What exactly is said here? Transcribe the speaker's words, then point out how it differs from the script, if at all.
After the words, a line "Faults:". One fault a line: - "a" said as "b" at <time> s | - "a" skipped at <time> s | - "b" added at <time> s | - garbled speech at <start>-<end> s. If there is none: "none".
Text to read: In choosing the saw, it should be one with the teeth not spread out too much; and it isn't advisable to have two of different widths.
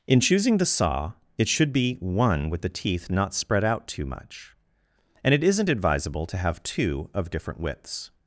In choosing the saw, it should be one with the teeth not spread out too much; and it isn't advisable to have two of different widths.
Faults:
none